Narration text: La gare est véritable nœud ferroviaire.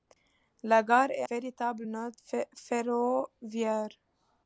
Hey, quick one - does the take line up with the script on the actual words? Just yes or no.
yes